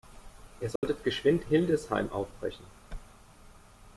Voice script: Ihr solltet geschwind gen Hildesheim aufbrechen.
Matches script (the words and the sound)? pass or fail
fail